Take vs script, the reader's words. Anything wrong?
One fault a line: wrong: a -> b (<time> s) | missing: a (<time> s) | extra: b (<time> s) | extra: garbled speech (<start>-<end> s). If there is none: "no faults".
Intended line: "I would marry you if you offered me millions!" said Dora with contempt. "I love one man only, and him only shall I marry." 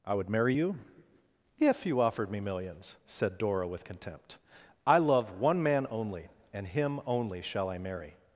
no faults